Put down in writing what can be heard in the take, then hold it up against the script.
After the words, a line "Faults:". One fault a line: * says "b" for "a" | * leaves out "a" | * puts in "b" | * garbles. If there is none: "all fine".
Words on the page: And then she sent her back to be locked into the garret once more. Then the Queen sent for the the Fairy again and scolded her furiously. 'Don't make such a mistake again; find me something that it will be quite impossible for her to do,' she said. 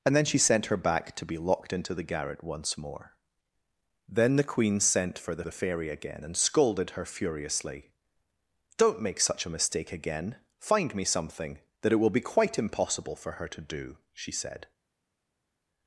And then she sent her back to be locked into the garret once more. Then the Queen sent for the the Fairy again and scolded her furiously. 'Don't make such a mistake again; find me something that it will be quite impossible for her to do,' she said.
Faults:
all fine